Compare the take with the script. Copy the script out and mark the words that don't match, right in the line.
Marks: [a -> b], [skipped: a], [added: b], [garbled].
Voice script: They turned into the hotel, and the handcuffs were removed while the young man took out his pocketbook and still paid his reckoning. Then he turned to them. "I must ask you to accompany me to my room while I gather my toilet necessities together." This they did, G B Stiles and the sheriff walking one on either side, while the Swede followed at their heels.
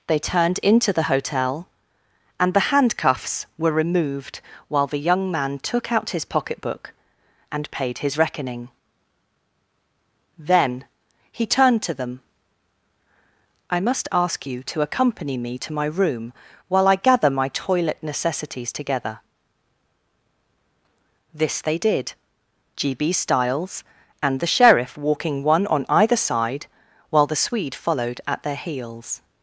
They turned into the hotel, and the handcuffs were removed while the young man took out his pocketbook and [skipped: still] paid his reckoning. Then he turned to them. "I must ask you to accompany me to my room while I gather my toilet necessities together." This they did, G B Stiles and the sheriff walking one on either side, while the Swede followed at their heels.